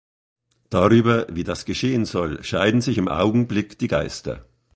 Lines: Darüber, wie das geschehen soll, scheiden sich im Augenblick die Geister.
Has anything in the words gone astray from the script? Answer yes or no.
no